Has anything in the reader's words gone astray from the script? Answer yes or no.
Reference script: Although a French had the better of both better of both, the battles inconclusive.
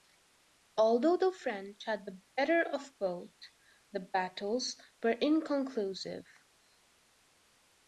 yes